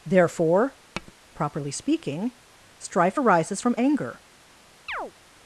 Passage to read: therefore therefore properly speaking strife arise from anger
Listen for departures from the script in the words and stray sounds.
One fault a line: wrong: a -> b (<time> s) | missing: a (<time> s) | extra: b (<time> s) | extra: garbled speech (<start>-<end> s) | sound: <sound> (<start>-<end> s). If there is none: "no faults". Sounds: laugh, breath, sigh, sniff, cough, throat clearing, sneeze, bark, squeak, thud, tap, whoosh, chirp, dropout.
missing: therefore (0.8 s)
sound: tap (0.9-1.1 s)
wrong: arise -> arises (3.2 s)
sound: chirp (4.9-5.1 s)